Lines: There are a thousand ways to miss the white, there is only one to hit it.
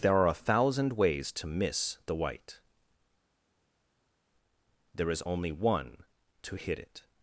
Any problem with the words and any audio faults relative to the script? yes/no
no